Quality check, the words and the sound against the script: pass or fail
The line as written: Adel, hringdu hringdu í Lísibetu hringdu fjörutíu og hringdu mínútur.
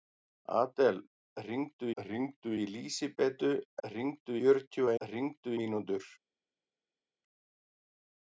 pass